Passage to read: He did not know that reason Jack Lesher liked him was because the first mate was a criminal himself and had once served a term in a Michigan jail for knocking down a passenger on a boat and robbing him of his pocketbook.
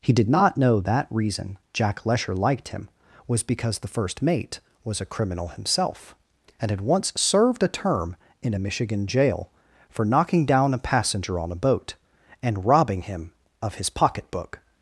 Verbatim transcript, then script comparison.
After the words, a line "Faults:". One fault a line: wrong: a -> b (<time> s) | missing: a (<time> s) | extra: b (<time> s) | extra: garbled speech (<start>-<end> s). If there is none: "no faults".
He did not know that reason Jack Lesher liked him was because the first mate was a criminal himself and had once served a term in a Michigan jail for knocking down a passenger on a boat and robbing him of his pocketbook.
Faults:
no faults